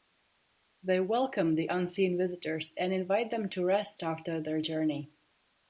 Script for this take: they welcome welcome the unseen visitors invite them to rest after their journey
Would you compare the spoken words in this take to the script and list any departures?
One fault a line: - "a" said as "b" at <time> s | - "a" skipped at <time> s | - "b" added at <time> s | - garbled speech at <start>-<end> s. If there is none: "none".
- "welcome" skipped at 1.5 s
- "and" added at 2.8 s